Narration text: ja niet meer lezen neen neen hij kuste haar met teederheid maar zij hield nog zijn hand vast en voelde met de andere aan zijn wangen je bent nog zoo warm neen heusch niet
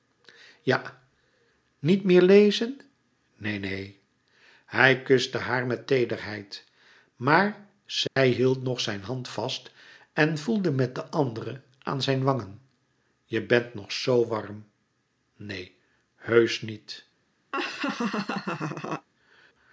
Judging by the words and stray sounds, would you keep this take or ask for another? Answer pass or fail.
fail